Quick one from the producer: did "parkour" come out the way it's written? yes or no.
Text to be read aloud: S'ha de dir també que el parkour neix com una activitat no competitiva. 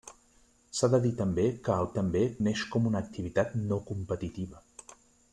no